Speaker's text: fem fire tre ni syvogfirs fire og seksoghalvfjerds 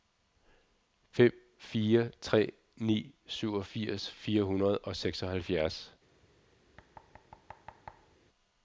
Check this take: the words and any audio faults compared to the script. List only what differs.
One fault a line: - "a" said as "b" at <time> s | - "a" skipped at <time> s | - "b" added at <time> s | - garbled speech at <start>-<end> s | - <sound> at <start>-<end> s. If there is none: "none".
- "hundrede" added at 4.4 s
- thud at 6.8-8.2 s